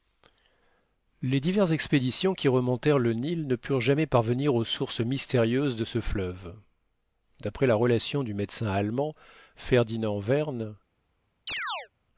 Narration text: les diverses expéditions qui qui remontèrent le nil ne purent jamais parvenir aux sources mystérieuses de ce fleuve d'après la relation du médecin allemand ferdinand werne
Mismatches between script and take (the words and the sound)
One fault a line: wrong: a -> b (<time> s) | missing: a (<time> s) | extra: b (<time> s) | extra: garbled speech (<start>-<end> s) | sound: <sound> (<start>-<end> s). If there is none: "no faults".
missing: qui (2.5 s)
sound: chirp (11.5-11.9 s)